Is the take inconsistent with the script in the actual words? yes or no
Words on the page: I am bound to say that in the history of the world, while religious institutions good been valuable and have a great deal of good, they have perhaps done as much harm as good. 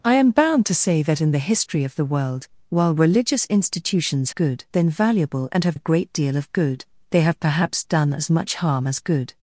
no